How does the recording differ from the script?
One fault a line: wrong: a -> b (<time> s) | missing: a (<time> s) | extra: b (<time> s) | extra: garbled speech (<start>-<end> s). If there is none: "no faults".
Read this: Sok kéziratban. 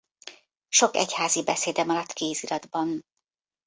extra: egyházi beszéde maradt (1.0 s)